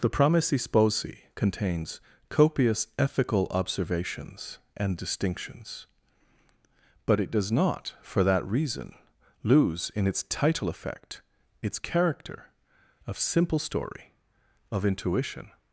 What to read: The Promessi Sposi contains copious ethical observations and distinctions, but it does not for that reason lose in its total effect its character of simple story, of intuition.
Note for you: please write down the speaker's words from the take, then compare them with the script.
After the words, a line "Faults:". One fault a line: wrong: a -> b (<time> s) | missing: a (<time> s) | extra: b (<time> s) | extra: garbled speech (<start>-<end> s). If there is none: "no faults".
The Promessi Sposi contains copious ethical observations and distinctions, but it does not for that reason lose in its title effect its character of simple story, of intuition.
Faults:
wrong: total -> title (10.2 s)